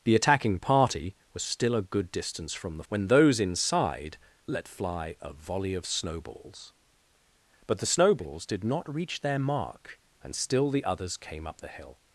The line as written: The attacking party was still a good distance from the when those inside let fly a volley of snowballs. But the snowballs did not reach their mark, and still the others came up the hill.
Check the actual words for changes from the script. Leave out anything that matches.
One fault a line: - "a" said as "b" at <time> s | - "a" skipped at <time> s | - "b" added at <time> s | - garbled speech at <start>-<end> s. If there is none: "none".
none